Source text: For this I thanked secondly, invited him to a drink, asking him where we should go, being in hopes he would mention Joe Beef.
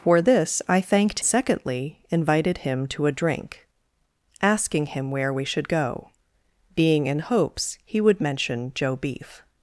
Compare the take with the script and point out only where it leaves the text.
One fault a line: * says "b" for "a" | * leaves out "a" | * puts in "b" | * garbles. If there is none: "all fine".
all fine